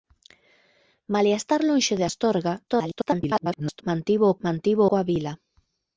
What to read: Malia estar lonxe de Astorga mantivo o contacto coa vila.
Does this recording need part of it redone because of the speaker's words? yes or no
yes